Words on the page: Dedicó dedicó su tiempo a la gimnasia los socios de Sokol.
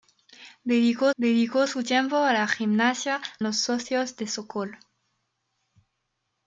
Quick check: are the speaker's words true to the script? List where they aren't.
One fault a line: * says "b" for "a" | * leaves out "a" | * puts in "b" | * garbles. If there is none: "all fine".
all fine